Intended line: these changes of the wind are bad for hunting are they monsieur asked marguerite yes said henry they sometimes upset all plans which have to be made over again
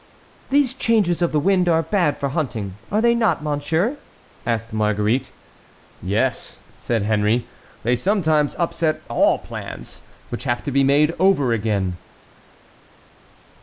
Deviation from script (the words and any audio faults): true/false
true